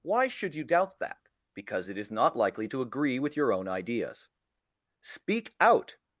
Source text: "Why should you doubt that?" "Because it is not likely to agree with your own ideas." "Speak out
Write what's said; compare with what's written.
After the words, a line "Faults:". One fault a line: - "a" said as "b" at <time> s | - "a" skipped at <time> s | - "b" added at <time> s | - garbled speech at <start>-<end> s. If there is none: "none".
"Why should you doubt that?" "Because it is not likely to agree with your own ideas." "Speak out
Faults:
none